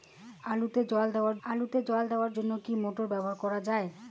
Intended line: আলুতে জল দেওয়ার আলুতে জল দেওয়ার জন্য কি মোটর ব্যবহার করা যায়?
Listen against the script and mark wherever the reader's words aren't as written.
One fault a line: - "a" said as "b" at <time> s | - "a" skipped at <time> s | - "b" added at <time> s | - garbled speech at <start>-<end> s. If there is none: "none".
none